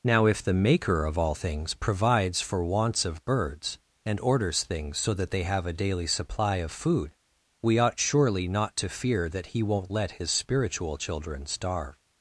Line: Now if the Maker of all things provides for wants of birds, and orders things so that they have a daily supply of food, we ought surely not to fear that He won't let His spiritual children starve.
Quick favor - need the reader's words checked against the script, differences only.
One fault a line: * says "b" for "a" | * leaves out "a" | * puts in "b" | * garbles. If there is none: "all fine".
all fine